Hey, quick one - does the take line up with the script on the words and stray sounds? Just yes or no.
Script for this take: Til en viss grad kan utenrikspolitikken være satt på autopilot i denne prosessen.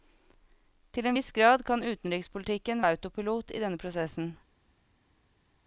no